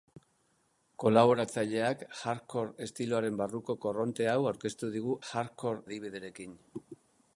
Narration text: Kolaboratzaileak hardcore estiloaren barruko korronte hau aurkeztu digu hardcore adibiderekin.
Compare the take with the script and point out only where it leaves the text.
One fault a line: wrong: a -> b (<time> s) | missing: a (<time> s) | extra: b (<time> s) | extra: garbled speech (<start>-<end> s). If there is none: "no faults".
no faults